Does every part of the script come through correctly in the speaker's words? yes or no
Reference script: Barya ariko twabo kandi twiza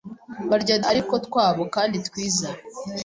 yes